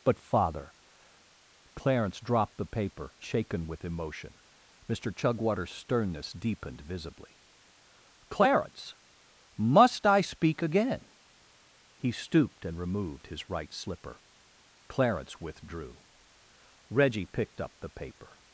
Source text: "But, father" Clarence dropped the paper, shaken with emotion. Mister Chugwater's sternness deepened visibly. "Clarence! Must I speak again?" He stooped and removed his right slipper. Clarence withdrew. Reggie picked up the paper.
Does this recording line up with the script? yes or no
yes